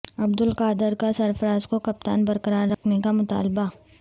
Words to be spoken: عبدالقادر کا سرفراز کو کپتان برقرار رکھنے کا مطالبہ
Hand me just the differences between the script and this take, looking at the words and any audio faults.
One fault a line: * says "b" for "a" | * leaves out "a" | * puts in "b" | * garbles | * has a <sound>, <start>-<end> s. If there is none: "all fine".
* has a dropout, 2.7-2.8 s